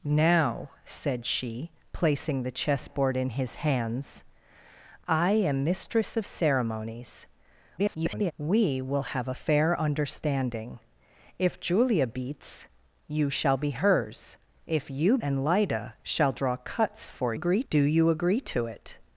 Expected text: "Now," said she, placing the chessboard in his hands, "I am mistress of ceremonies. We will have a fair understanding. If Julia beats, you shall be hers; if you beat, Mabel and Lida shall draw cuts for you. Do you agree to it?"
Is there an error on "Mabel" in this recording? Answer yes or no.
yes